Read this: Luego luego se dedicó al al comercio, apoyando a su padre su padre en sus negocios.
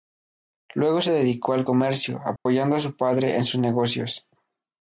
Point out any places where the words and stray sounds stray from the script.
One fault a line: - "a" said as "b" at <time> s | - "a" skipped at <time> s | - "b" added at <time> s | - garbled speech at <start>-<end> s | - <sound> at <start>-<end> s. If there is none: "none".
- "luego" skipped at 1.0 s
- "al" skipped at 1.7 s
- dropout at 2.4-2.5 s
- "su padre" skipped at 3.4 s